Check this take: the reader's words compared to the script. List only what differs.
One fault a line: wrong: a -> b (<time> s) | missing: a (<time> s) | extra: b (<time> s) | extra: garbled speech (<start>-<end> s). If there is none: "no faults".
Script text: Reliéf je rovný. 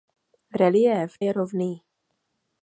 no faults